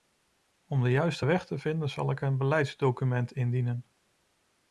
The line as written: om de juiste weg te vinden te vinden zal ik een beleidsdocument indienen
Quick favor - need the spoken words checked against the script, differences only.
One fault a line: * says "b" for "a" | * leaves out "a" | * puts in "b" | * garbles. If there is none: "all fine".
* leaves out "te vinden"